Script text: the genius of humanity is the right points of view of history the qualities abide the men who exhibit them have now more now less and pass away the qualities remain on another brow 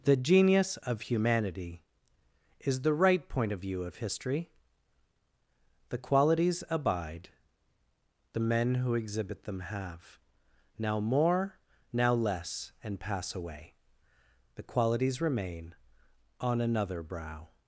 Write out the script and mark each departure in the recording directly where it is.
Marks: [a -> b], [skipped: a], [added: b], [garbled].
the genius of humanity is the right [points -> point] of view of history the qualities abide the men who exhibit them have now more now less and pass away the qualities remain on another brow